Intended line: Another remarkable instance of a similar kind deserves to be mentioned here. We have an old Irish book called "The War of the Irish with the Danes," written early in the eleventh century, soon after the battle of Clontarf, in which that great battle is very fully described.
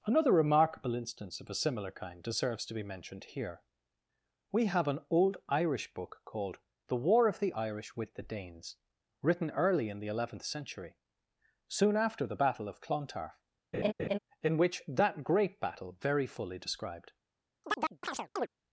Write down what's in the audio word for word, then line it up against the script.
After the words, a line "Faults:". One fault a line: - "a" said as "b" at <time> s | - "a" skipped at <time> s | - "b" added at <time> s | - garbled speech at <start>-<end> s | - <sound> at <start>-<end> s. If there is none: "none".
Another remarkable instance of a similar kind deserves to be mentioned here. We have an old Irish book called "The War of the Irish with the Danes," written early in the eleventh century, soon after the battle of Clontarf, in which that great battle very fully described.
Faults:
- laugh at 13.7-14.2 s
- "is" skipped at 16.0 s
- chirp at 17.6-18.5 s